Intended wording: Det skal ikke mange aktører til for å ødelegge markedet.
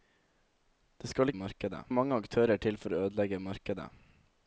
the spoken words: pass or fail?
fail